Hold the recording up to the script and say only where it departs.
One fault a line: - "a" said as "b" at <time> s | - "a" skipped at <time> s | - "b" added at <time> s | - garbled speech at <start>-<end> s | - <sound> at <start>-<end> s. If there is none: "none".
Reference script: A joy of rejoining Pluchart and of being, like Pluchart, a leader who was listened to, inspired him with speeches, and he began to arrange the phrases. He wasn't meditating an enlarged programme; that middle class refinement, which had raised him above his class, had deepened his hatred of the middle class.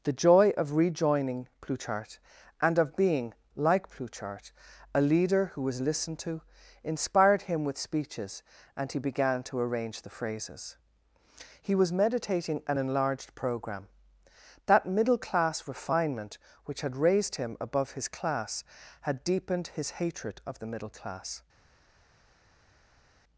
- "A" said as "The" at 0.0 s
- "wasn't" said as "was" at 11.8 s